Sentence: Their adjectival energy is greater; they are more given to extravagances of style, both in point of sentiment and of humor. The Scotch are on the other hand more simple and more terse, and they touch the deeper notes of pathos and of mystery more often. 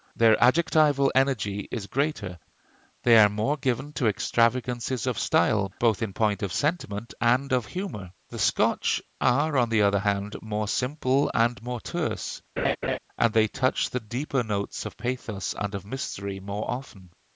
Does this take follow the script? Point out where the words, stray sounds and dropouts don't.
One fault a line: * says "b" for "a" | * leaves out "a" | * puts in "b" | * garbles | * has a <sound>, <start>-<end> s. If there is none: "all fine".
* has a laugh, 12.6-13.0 s